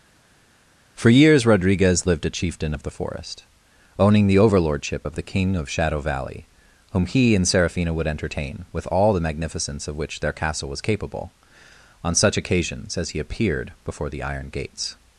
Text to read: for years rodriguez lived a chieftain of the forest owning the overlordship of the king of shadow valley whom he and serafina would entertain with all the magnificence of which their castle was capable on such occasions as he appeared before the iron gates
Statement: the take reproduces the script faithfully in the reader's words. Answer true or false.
true